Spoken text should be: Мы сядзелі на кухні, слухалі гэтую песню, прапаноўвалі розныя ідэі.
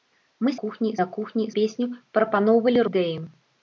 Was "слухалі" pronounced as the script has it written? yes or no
no